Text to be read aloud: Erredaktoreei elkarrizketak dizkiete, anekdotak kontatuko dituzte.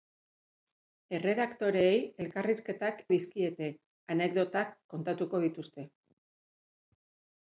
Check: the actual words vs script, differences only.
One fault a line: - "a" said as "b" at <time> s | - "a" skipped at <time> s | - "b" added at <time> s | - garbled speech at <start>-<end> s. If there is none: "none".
none